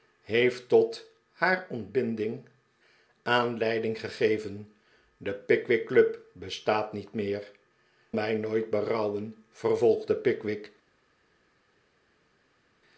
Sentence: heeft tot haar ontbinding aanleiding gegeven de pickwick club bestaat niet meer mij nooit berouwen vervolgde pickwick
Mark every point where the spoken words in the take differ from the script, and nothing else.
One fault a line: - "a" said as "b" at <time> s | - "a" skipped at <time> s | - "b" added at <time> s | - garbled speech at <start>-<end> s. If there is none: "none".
none